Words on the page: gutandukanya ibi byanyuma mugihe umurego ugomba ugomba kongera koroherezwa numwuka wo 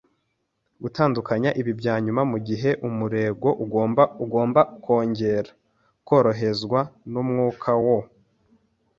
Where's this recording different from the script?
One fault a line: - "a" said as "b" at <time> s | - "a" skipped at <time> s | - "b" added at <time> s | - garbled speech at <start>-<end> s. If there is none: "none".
none